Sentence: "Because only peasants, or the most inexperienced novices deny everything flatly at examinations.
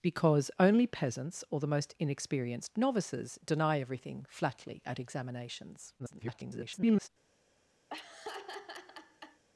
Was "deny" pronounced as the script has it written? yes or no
yes